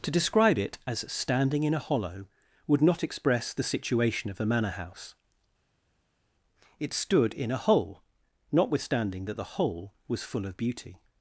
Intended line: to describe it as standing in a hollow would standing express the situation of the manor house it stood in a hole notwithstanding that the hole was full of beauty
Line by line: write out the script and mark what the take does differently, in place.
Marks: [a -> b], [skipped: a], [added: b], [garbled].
to describe it as standing in a hollow would [standing -> not] express the situation of the manor house it stood in a hole notwithstanding that the hole was full of beauty